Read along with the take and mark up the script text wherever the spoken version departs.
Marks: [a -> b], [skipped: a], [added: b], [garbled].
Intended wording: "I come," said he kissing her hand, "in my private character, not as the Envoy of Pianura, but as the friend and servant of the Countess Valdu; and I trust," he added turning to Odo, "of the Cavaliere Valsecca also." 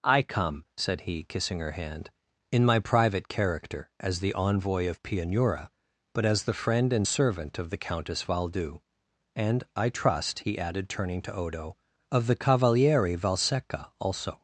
"I come," said he kissing her hand, "in my private character, [skipped: not] as the Envoy of Pianura, but as the friend and servant of the Countess Valdu; and I trust," he added turning to Odo, "of the Cavaliere Valsecca also."